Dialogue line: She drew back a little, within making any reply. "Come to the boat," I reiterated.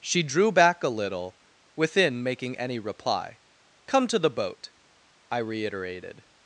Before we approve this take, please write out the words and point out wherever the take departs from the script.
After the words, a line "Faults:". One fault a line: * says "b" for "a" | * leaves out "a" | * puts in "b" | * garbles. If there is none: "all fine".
She drew back a little, within making any reply. "Come to the boat," I reiterated.
Faults:
all fine